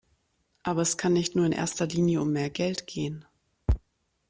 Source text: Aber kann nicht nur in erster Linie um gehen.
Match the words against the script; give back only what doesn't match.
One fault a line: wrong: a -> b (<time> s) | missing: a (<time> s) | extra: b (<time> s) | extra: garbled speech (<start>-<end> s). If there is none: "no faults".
extra: es (0.8 s)
extra: mehr Geld (2.3 s)